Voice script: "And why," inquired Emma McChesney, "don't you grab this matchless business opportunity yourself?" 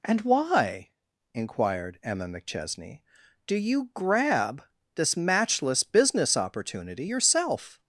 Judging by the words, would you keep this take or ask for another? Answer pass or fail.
fail